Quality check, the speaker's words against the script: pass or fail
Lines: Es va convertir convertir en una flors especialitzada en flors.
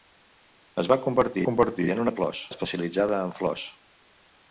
pass